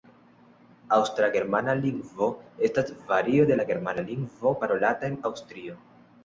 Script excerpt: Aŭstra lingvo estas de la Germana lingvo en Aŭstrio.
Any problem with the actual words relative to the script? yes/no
yes